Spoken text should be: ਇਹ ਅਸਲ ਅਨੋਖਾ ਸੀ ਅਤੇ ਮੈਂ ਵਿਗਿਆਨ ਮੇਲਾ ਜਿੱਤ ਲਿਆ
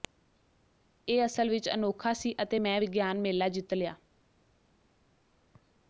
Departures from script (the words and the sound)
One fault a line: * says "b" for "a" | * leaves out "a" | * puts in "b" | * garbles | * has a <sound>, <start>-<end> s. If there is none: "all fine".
* puts in "ਵਿੱਚ"